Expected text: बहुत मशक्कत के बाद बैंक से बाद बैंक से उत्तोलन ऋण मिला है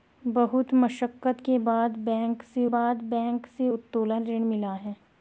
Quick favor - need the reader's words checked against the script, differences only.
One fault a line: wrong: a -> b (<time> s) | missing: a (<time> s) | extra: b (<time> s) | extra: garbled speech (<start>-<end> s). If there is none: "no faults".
no faults